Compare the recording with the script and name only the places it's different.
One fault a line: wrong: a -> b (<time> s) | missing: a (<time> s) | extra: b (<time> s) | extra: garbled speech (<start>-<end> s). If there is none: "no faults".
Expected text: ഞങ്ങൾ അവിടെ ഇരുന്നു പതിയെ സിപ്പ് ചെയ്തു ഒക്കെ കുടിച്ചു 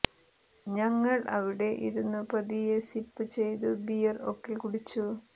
extra: ബിയർ (3.9 s)